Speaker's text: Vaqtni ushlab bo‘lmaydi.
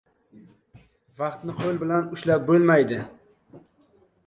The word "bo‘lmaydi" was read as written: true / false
true